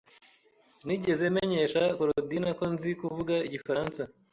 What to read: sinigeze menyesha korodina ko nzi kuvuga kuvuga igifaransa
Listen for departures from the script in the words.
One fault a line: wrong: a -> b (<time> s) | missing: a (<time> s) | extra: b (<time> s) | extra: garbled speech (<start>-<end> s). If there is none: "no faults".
missing: kuvuga (3.3 s)